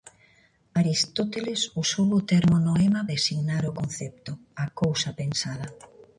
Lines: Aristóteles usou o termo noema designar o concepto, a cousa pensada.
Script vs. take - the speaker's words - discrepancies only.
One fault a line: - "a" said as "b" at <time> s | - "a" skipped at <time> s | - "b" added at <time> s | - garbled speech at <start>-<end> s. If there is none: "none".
none